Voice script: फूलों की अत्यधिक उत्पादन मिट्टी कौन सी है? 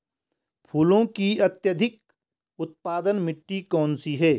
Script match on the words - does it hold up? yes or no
yes